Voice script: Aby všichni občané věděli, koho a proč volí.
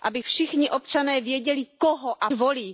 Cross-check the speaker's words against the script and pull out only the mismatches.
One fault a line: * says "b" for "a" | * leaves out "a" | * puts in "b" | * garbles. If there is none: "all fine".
* leaves out "proč"